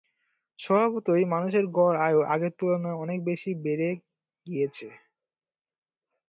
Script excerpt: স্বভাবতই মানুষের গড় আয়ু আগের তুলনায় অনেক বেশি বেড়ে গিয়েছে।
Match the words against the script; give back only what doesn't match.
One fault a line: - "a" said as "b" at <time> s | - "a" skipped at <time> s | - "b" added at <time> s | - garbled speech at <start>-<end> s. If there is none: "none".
none